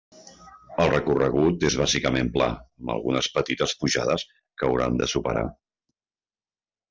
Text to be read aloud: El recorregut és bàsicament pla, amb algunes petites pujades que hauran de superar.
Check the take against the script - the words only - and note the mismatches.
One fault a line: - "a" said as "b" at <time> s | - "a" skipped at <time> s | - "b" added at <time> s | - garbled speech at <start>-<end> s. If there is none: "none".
none